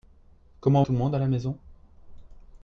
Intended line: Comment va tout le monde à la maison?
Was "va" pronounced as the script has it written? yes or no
no